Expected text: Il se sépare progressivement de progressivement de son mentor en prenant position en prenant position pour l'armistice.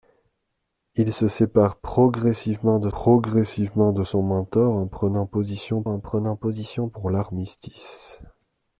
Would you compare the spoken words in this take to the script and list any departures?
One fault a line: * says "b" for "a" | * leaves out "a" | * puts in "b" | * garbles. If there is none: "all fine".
all fine